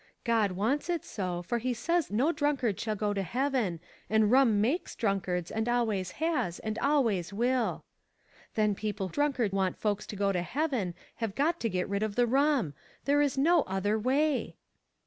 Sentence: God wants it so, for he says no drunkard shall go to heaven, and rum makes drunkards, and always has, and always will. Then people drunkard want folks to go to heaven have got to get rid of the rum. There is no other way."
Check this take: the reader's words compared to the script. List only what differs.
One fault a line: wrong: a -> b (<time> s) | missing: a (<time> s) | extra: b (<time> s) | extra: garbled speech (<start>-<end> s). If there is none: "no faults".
no faults